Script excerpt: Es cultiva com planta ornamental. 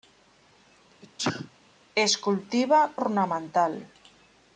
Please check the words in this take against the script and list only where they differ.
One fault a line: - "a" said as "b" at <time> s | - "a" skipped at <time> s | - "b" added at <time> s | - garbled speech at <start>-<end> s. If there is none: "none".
- "com planta" skipped at 2.9 s